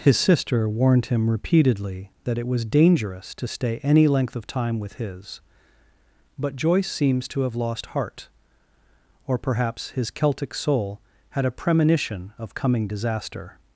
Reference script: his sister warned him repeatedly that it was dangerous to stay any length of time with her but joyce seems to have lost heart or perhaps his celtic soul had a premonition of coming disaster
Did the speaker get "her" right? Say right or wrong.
wrong